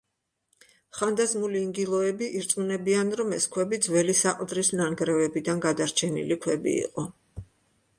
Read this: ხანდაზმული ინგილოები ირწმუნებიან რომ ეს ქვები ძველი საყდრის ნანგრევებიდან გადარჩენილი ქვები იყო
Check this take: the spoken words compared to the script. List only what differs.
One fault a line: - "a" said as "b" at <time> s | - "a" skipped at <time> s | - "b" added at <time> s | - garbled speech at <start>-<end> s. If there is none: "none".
none